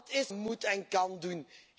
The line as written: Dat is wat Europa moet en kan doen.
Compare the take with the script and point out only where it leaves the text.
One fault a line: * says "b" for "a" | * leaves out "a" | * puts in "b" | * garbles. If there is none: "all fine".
* leaves out "wat Europa"